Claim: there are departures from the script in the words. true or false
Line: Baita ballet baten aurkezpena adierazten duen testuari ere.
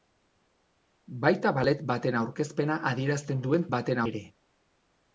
true